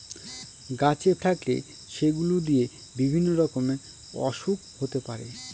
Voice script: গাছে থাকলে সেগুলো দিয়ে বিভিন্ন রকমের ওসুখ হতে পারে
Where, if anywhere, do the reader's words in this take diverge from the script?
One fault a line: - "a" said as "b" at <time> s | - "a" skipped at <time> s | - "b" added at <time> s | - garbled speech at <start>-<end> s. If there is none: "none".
none